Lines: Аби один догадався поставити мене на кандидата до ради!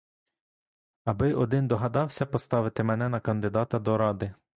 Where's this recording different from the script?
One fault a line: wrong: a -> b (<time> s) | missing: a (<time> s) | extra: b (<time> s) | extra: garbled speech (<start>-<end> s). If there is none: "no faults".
no faults